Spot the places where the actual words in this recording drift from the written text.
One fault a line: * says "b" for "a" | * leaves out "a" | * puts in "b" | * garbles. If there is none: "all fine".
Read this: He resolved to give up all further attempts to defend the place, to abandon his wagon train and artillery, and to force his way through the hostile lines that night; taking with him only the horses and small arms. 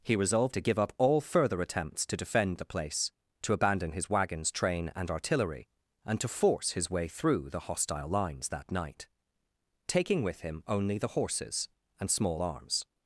* says "wagons" for "wagon"